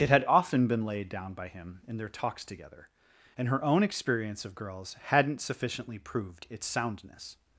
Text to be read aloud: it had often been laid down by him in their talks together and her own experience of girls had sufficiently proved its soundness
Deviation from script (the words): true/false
true